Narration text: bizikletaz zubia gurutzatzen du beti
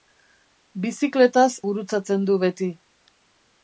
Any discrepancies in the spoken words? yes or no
yes